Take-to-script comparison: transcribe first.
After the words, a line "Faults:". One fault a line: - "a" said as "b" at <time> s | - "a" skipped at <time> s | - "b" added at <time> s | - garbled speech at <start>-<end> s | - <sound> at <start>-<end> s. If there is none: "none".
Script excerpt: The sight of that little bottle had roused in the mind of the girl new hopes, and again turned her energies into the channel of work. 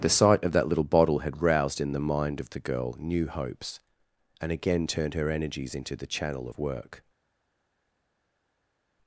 The sight of that little bottle had roused in the mind of the girl new hopes, and again turned her energies into the channel of work.
Faults:
none